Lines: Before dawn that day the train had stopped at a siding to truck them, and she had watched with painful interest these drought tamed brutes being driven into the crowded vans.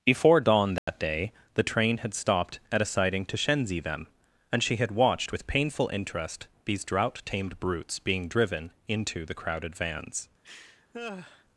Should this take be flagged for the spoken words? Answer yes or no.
yes